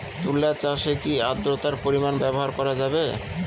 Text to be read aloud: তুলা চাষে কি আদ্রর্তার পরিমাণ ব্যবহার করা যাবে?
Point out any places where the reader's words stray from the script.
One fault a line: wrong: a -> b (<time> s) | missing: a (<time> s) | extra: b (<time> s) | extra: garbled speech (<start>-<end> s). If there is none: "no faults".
no faults